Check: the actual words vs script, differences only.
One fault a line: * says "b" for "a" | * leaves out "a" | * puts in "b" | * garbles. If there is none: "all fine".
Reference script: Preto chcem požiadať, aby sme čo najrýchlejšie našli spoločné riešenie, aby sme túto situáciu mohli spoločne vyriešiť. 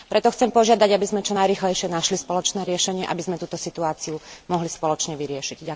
all fine